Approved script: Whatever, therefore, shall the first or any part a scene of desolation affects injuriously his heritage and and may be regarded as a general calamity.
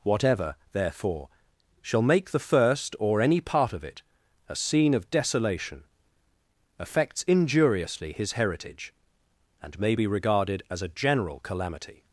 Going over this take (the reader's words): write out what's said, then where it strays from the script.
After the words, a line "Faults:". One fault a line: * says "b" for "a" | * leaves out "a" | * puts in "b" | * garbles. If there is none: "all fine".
Whatever, therefore, shall make the first or any part of it a scene of desolation affects injuriously his heritage and may be regarded as a general calamity.
Faults:
* puts in "make"
* puts in "of it"
* leaves out "and"